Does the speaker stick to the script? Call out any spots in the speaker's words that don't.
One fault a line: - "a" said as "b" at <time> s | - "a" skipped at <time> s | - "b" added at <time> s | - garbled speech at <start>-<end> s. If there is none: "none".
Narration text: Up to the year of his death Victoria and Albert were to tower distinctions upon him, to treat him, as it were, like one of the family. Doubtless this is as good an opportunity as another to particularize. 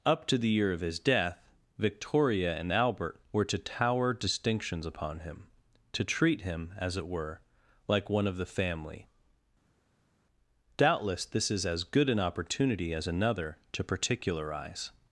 none